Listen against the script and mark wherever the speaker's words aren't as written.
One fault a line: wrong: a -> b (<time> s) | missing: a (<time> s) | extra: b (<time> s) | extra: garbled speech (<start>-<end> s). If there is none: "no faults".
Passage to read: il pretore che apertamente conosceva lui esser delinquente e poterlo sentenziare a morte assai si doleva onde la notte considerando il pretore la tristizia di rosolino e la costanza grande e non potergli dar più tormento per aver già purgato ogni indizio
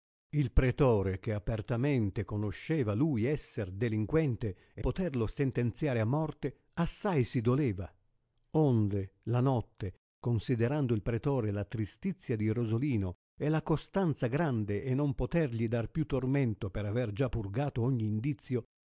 no faults